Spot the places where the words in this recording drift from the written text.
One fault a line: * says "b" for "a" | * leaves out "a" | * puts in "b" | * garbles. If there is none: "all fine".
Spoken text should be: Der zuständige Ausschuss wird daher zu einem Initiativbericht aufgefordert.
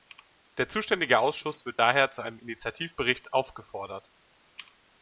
all fine